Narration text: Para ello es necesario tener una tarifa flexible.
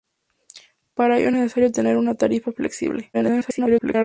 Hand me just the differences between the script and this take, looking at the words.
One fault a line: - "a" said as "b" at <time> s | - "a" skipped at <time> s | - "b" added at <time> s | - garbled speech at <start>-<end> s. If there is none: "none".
- garbled speech at 3.1-4.0 s